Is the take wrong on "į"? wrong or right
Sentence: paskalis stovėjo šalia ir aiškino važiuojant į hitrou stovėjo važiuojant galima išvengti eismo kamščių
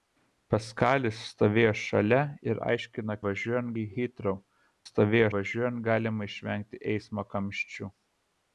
right